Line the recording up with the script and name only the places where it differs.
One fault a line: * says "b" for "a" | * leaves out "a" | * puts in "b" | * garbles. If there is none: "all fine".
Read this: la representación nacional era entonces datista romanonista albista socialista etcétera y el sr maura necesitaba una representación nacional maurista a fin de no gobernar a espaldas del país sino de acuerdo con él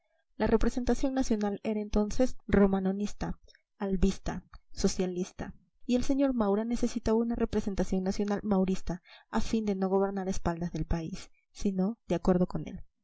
* leaves out "datista"
* leaves out "etcétera"